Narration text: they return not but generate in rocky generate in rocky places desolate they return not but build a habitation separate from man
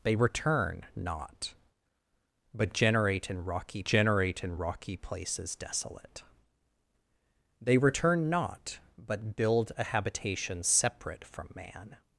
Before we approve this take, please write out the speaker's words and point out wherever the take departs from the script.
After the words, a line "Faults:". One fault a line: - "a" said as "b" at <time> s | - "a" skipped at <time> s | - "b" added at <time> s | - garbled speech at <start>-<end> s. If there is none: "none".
they return not but generate in rocky generate in rocky places desolate they return not but build a habitation separate from man
Faults:
none